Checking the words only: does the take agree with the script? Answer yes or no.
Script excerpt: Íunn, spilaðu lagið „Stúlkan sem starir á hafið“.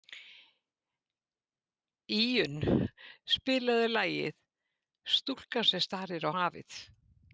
yes